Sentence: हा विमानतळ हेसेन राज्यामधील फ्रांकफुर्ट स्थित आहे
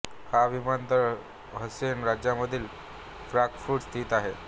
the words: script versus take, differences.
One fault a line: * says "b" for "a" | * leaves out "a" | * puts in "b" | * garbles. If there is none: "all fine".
all fine